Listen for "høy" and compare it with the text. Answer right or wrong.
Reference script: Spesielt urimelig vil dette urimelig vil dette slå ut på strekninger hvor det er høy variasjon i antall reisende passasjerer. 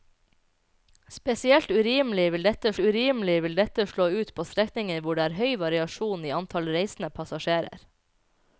right